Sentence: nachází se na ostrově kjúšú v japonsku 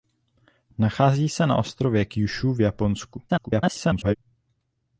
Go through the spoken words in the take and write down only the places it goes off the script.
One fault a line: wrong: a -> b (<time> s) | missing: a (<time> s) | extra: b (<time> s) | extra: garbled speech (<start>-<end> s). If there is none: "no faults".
extra: garbled speech (3.3-4.2 s)